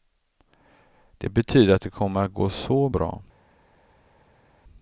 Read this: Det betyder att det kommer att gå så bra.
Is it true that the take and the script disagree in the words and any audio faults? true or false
false